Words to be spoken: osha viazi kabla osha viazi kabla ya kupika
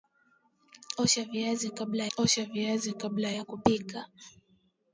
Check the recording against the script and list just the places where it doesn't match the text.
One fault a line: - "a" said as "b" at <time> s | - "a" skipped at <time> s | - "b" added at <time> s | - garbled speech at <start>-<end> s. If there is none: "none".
none